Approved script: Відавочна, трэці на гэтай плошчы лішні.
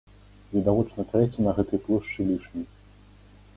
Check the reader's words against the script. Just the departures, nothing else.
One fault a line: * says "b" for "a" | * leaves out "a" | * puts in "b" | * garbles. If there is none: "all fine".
all fine